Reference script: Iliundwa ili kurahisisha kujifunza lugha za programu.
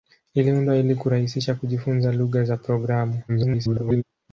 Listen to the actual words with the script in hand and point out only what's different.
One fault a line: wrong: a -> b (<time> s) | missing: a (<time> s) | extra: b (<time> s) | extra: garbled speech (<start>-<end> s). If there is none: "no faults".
extra: garbled speech (3.3-4.0 s)